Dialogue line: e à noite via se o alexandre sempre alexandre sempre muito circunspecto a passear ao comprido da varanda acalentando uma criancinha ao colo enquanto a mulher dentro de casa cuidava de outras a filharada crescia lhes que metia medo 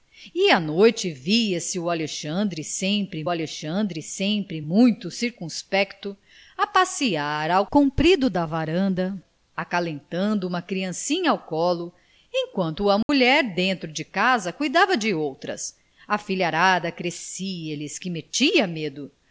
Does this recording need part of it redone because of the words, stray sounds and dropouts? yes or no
yes